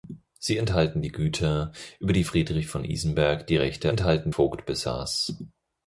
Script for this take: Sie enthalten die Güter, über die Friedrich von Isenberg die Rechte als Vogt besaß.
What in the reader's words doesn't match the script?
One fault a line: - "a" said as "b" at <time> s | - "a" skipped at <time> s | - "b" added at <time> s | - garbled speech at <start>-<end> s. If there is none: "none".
- "als" said as "enthalten" at 3.9 s